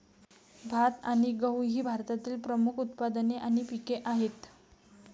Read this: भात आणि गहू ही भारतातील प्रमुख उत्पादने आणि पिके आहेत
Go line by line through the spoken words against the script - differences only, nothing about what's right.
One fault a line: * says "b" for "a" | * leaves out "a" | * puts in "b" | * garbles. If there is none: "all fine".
all fine